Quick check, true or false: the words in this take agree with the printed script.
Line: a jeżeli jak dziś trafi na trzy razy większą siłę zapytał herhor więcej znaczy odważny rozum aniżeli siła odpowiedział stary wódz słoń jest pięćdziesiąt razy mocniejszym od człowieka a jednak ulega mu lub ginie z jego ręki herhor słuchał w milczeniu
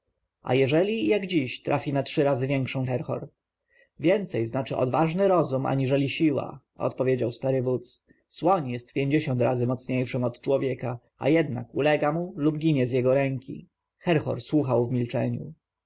false